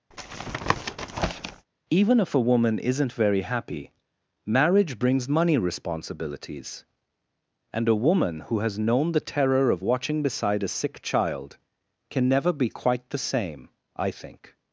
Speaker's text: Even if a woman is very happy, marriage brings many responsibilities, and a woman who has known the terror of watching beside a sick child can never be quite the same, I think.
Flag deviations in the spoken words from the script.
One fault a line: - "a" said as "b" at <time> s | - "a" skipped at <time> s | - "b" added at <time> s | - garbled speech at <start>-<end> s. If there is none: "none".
- "is" said as "isn't" at 2.8 s
- "many" said as "money" at 5.3 s